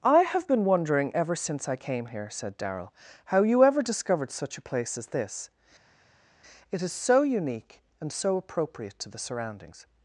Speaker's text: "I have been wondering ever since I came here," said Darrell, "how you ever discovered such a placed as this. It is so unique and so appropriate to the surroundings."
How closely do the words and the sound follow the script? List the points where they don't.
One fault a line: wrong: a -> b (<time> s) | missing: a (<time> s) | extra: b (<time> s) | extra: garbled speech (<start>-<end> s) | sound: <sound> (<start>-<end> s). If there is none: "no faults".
wrong: placed -> place (4.7 s)